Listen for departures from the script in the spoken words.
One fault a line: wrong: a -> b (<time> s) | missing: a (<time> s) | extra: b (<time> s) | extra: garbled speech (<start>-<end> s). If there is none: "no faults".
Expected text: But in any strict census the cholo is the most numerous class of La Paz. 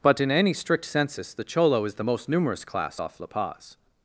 wrong: of -> off (3.0 s)